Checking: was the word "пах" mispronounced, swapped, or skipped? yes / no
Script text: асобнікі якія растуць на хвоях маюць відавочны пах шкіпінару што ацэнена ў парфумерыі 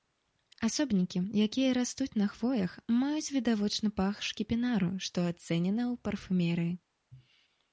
no